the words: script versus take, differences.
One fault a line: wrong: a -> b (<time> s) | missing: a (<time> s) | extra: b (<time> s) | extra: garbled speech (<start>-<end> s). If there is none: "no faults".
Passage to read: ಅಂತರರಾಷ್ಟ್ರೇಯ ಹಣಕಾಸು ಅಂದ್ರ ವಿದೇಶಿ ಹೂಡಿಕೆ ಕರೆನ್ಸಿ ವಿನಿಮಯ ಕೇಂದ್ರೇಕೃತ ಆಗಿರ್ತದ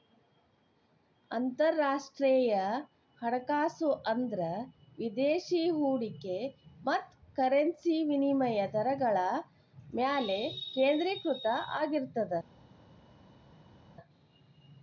extra: ಮತ್ತ (6.8 s)
extra: ದರಗಳ ಮ್ಯಾಲೆ (8.7 s)